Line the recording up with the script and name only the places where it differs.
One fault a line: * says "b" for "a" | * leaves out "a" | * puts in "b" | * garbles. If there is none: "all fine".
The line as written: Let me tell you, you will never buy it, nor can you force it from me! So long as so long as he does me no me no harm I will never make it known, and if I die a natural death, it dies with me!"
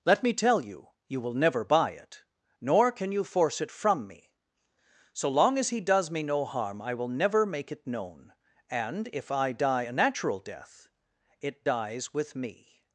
* leaves out "so long as"
* leaves out "me no"